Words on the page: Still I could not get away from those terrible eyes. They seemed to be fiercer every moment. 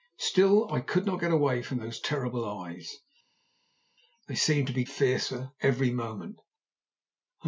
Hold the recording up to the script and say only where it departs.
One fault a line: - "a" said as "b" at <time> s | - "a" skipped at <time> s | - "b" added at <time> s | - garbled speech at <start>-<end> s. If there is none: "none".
none